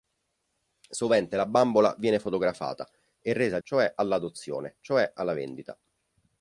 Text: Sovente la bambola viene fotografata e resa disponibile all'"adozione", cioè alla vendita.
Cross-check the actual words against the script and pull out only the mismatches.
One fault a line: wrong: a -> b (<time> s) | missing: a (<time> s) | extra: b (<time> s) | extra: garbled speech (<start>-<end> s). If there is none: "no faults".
wrong: disponibile -> cioè (3.6 s)